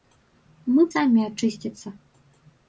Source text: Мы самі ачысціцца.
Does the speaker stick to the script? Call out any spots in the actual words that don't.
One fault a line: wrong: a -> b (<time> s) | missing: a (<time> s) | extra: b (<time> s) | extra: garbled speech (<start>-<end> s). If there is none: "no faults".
no faults